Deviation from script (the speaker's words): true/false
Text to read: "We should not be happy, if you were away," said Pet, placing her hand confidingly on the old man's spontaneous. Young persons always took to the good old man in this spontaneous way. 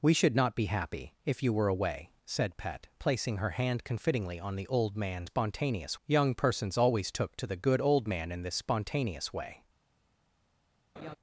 false